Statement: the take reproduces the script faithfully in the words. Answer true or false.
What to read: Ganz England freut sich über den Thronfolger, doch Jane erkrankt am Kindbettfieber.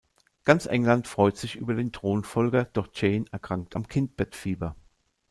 true